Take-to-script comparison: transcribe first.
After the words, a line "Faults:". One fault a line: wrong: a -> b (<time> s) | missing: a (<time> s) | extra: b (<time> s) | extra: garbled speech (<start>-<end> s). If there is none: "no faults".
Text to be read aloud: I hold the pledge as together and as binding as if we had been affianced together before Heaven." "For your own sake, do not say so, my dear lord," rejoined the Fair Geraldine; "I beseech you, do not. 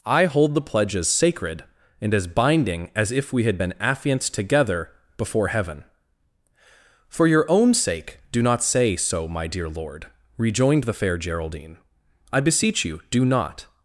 I hold the pledge as sacred and as binding as if we had been affianced together before Heaven." "For your own sake, do not say so, my dear lord," rejoined the Fair Geraldine; "I beseech you, do not.
Faults:
wrong: together -> sacred (1.1 s)